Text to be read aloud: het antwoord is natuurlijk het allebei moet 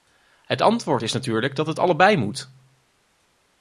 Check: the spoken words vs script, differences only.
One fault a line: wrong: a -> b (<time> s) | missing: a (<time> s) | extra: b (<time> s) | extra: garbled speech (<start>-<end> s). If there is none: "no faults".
extra: dat (1.6 s)